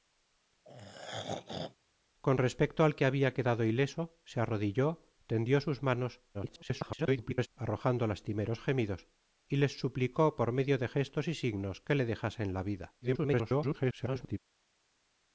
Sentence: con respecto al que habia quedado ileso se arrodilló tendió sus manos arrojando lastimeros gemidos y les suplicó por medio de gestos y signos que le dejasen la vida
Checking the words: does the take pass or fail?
fail